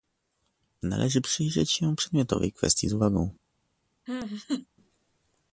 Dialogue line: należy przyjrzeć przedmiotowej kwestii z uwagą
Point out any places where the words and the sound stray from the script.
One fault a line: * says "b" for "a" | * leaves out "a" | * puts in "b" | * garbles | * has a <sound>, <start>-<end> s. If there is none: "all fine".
* puts in "się"
* has a laugh, 4.1-4.7 s